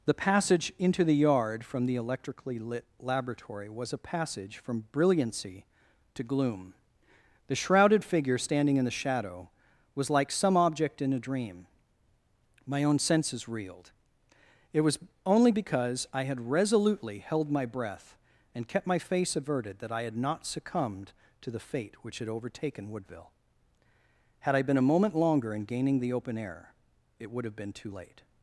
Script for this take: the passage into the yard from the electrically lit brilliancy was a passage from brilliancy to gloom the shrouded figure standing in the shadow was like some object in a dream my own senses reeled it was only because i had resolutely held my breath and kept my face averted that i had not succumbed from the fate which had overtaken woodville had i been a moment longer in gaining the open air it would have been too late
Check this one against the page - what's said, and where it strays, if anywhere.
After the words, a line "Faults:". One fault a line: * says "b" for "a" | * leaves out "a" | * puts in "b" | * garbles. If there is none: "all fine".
the passage into the yard from the electrically lit laboratory was a passage from brilliancy to gloom the shrouded figure standing in the shadow was like some object in a dream my own senses reeled it was only because i had resolutely held my breath and kept my face averted that i had not succumbed to the fate which had overtaken woodville had i been a moment longer in gaining the open air it would have been too late
Faults:
* says "laboratory" for "brilliancy"
* says "to" for "from"